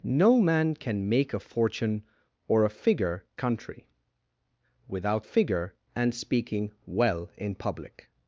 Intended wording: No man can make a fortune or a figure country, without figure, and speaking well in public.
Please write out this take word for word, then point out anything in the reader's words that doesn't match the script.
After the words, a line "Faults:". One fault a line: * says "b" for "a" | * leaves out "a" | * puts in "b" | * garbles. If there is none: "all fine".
No man can make a fortune or a figure country, without figure, and speaking well in public.
Faults:
all fine